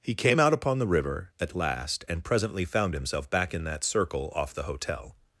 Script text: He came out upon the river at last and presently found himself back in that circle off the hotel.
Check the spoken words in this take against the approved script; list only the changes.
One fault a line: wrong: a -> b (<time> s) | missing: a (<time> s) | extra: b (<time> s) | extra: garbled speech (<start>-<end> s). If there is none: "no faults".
no faults